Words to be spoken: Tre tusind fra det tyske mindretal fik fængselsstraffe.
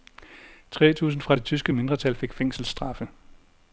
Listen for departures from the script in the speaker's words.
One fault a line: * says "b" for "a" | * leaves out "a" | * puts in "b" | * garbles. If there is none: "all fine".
all fine